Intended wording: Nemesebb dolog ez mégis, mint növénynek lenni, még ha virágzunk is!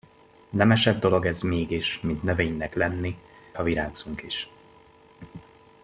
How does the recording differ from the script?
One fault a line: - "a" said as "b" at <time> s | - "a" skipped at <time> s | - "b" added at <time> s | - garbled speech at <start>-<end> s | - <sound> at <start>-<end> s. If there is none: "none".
- "még" skipped at 3.1 s